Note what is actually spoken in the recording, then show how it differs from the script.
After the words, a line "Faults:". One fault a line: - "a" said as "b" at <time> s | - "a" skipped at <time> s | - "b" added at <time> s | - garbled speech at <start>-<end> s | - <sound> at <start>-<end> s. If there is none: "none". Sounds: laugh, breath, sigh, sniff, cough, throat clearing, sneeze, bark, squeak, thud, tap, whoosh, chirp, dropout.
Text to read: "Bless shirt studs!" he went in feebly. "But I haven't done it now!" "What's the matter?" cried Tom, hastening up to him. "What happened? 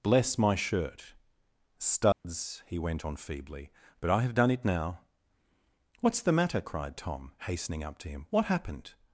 "Bless my shirt studs!" he went on feebly. "But I have done it now!" "What's the matter?" cried Tom, hastening up to him. "What happened?
Faults:
- "my" added at 0.3 s
- dropout at 2.1-2.2 s
- "in" said as "on" at 3.0 s
- "haven't" said as "have" at 4.2 s